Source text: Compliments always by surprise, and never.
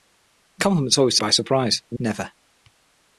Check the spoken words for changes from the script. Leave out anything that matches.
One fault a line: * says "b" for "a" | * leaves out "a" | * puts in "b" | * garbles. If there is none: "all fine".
all fine